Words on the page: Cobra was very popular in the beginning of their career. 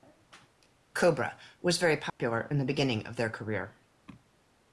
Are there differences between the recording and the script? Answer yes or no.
no